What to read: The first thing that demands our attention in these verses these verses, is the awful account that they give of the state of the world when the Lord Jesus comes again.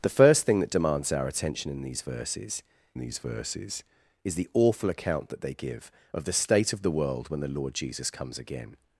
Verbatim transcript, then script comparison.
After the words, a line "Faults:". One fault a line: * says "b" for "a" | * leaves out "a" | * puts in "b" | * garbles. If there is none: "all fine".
The first thing that demands our attention in these verses these verses, is the awful account that they give of the state of the world when the Lord Jesus comes again.
Faults:
all fine